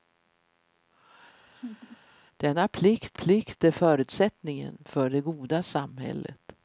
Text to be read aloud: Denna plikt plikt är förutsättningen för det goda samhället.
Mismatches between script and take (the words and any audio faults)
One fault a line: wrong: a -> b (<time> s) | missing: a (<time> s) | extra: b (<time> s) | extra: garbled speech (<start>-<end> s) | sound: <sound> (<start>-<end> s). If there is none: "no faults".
sound: laugh (1.5-2.0 s)